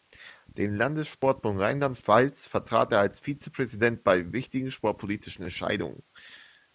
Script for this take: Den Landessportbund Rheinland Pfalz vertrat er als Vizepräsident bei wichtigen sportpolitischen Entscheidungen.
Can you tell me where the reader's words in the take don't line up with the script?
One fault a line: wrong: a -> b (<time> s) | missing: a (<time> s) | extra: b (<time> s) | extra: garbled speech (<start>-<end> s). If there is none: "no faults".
no faults